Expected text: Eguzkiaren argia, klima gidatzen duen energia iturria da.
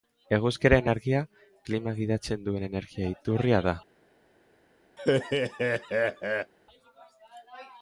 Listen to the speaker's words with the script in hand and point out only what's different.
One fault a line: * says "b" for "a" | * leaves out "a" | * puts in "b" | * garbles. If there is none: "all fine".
all fine